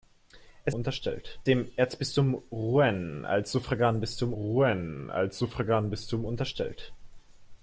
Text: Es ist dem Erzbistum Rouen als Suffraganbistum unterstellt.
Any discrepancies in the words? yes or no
yes